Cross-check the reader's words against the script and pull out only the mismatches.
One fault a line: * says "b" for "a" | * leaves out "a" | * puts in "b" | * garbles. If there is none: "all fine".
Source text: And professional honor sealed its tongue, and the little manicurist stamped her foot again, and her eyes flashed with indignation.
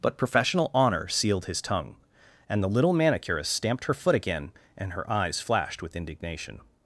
* says "But" for "And"
* says "his" for "its"